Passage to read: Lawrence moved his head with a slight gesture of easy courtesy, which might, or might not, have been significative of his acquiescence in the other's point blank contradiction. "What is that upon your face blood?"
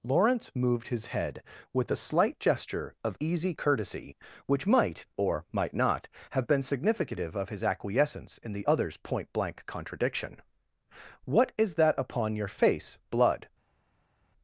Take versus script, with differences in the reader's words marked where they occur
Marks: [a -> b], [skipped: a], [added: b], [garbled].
Lawrence moved his head with a slight gesture of easy courtesy, which might, or might not, have been significative of his acquiescence in the other's point blank contradiction. "What is that upon your face blood?"